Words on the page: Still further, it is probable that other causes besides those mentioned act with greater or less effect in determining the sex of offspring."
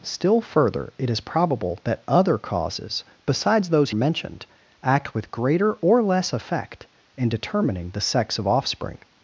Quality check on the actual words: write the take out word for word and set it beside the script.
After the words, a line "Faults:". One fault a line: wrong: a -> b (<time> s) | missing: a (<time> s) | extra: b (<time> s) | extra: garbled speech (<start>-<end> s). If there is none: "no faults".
Still further, it is probable that other causes besides those mentioned act with greater or less effect in determining the sex of offspring."
Faults:
no faults